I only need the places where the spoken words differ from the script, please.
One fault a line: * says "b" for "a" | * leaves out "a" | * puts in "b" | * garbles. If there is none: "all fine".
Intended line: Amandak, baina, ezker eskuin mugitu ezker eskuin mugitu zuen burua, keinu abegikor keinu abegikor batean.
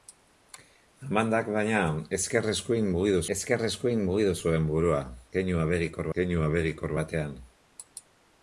all fine